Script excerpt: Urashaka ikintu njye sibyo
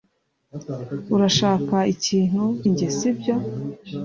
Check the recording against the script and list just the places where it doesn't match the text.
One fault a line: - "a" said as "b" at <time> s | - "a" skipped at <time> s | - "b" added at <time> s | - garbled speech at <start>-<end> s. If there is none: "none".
none